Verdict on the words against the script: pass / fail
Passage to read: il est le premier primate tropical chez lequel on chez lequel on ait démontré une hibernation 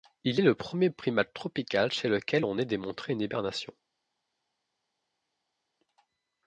fail